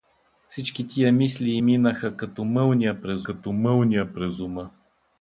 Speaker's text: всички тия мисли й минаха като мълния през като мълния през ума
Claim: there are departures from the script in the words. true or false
false